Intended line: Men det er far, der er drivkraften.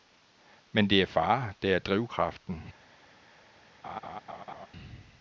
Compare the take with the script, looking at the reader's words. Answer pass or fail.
pass